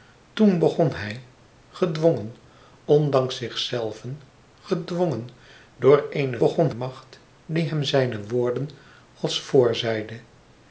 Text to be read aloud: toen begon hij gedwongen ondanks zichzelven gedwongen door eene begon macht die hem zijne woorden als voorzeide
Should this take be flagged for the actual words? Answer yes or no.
no